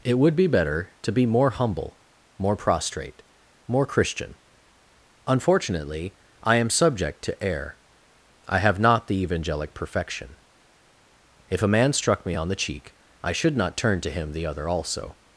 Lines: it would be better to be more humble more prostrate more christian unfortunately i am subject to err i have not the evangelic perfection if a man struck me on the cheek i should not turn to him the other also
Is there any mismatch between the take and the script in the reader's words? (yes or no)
no